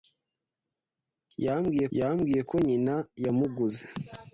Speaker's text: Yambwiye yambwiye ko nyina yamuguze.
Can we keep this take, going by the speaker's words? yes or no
yes